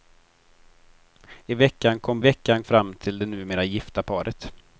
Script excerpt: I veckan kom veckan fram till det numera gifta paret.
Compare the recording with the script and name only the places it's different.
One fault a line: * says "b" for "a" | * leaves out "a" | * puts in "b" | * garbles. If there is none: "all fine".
all fine